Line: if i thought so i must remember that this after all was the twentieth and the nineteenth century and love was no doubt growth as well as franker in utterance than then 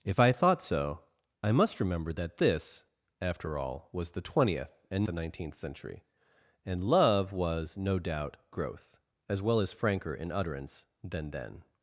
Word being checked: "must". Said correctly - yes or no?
yes